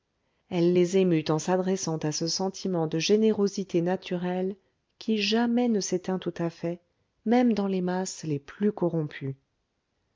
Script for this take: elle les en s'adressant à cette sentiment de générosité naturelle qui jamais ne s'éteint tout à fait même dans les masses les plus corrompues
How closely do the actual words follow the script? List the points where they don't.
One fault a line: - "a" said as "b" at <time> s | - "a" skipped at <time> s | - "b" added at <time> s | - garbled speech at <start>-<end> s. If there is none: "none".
- "émut" added at 1.0 s
- "cette" said as "ce" at 2.1 s